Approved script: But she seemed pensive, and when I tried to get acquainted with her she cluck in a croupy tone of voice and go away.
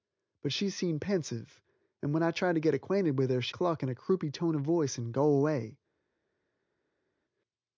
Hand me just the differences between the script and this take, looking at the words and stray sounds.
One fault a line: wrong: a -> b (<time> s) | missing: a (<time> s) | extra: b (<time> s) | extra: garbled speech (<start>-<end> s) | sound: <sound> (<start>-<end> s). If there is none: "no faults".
no faults